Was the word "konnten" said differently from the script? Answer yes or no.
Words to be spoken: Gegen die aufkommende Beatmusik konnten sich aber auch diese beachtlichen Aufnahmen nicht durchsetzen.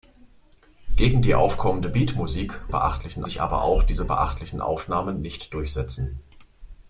yes